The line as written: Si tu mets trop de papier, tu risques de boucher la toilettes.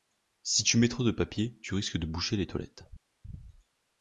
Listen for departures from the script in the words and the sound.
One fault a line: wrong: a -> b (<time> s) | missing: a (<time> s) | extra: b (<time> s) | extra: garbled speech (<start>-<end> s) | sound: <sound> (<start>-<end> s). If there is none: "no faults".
wrong: la -> les (2.4 s)